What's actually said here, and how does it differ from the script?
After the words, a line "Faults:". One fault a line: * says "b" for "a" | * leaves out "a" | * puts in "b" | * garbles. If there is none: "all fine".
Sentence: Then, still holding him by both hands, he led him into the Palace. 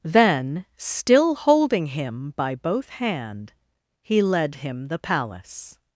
Then, still holding him by both hand, he led him the Palace.
Faults:
* says "hand" for "hands"
* leaves out "into"